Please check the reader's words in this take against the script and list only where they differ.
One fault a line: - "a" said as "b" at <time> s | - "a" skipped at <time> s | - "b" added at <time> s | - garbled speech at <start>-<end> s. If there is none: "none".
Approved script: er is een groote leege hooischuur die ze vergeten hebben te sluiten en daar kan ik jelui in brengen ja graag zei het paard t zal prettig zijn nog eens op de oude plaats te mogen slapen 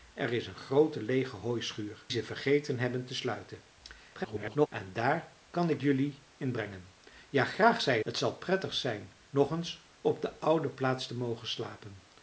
- "die" skipped at 2.0 s
- garbled speech at 4.1-4.7 s
- "het paard" skipped at 8.0 s